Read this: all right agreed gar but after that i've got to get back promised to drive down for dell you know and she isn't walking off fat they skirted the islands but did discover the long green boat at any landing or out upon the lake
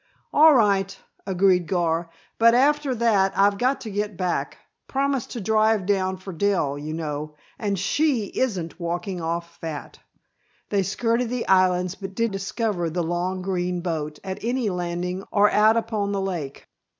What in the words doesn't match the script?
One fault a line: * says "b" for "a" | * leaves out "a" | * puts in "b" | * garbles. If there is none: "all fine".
all fine